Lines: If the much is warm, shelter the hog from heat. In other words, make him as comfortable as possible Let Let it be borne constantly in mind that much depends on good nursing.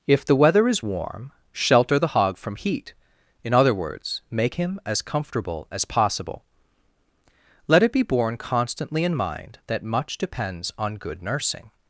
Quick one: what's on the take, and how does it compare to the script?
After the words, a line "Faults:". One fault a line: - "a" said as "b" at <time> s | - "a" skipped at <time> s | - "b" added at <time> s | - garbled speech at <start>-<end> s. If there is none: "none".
If the weather is warm, shelter the hog from heat. In other words, make him as comfortable as possible Let it be borne constantly in mind that much depends on good nursing.
Faults:
- "much" said as "weather" at 0.3 s
- "Let" skipped at 7.8 s